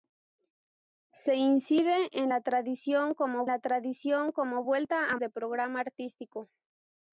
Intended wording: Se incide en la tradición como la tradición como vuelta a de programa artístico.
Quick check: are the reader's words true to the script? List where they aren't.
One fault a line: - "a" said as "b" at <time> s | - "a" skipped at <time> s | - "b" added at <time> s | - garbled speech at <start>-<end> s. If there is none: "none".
none